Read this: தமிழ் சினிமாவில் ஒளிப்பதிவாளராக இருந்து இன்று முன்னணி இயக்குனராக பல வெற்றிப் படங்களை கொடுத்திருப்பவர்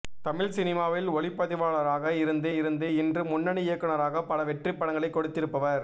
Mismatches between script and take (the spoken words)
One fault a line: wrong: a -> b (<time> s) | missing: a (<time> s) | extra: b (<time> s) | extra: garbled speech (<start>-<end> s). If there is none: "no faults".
extra: இருந்து (2.5 s)